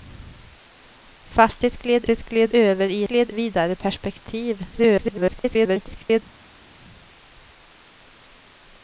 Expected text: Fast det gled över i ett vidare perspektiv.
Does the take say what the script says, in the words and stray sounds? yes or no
no